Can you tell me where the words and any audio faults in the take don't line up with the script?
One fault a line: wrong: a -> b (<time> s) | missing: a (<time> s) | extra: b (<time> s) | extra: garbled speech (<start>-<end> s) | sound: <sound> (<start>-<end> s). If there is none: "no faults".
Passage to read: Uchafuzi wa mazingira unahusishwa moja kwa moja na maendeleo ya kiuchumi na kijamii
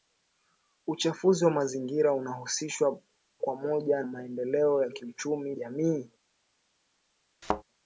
missing: moja (3.0 s)
missing: na (4.0 s)
missing: na (5.5 s)
sound: thud (7.4-7.6 s)